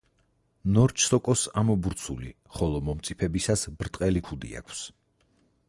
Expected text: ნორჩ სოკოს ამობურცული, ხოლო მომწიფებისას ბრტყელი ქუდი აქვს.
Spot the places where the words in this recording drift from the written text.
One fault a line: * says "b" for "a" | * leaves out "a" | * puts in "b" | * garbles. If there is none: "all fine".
all fine